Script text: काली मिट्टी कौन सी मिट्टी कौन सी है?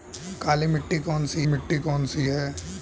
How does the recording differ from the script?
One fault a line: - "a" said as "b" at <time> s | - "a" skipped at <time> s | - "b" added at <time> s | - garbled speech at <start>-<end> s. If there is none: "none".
none